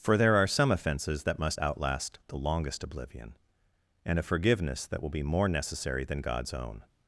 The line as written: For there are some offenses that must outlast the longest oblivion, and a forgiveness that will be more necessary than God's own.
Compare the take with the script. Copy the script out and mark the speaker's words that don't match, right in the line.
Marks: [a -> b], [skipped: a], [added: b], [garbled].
For there are some offenses that must outlast the longest oblivion, and a forgiveness that will be more necessary than God's own.